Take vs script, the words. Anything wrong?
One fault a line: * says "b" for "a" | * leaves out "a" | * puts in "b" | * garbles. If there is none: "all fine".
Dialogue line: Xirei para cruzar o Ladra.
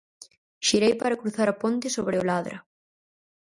* puts in "a ponte sobre"